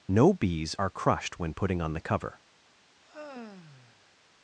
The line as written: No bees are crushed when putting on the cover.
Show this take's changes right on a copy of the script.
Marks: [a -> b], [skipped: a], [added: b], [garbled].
No bees are crushed when putting on the cover.